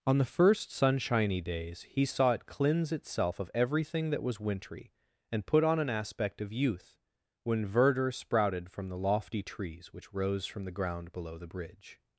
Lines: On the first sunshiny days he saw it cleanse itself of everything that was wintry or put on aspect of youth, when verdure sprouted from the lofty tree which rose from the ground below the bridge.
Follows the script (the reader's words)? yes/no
no